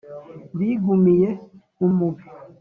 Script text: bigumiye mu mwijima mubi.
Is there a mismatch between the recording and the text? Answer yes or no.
yes